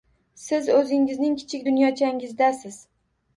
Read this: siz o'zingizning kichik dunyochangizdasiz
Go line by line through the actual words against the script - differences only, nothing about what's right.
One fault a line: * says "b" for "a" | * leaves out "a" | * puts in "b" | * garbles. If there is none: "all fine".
all fine